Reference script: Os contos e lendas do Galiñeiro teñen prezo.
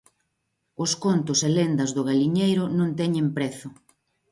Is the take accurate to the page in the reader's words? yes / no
no